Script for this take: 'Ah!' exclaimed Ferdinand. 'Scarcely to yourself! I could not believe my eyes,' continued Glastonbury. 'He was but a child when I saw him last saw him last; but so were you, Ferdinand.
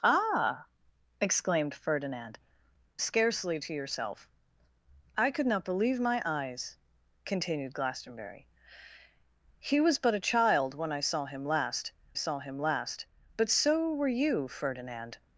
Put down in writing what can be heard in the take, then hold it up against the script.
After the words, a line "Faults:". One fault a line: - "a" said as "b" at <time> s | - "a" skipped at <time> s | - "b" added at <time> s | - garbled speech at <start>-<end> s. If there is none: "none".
'Ah!' exclaimed Ferdinand. 'Scarcely to yourself! I could not believe my eyes,' continued Glastonbury. 'He was but a child when I saw him last saw him last; but so were you, Ferdinand.
Faults:
none